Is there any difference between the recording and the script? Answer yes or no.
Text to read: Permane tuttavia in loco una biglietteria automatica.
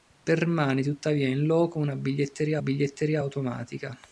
yes